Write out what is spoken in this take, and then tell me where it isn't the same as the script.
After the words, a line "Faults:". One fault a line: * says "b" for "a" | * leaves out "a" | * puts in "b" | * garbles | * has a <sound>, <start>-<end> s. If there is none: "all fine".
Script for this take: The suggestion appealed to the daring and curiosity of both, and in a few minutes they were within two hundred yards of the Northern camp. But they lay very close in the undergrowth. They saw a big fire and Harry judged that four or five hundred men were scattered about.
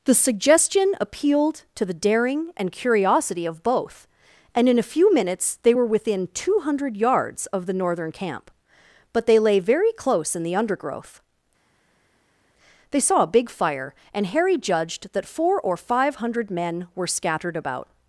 The suggestion appealed to the daring and curiosity of both, and in a few minutes they were within two hundred yards of the Northern camp. But they lay very close in the undergrowth. They saw a big fire and Harry judged that four or five hundred men were scattered about.
Faults:
all fine